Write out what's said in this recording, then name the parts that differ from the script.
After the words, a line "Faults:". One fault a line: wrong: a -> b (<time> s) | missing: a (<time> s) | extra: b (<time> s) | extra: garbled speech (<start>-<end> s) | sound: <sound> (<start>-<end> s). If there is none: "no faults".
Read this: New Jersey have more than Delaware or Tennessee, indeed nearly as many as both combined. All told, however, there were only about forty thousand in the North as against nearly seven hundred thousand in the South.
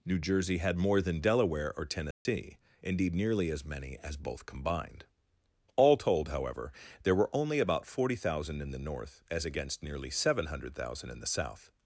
New Jersey had more than Delaware or Tennessee, indeed nearly as many as both combined. All told, however, there were only about forty thousand in the North as against nearly seven hundred thousand in the South.
Faults:
wrong: have -> had (0.6 s)
sound: dropout (2.1-2.3 s)